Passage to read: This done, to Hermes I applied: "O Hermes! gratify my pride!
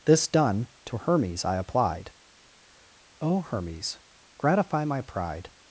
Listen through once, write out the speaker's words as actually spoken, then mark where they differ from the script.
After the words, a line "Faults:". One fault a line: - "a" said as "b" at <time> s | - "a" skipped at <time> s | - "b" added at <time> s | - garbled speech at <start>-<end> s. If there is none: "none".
This done, to Hermes I applied: "O Hermes! gratify my pride!
Faults:
none